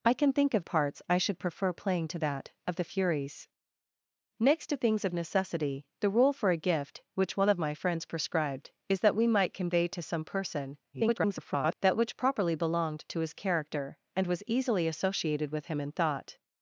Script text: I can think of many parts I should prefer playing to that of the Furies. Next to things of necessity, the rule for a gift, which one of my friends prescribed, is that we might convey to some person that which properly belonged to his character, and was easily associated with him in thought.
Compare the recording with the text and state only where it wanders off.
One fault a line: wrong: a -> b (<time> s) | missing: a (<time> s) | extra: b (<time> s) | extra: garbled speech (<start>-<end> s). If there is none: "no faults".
missing: many (0.7 s)
extra: garbled speech (10.9-11.8 s)